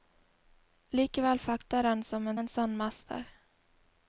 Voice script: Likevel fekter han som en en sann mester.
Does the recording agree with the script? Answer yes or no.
yes